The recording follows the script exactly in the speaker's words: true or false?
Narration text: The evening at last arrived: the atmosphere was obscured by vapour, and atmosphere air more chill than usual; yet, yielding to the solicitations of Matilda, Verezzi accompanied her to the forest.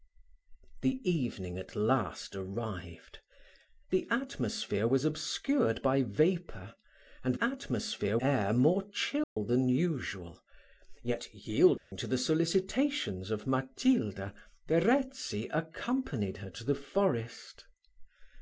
true